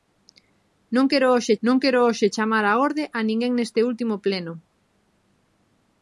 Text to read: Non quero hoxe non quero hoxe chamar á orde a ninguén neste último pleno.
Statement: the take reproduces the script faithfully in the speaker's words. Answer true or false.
true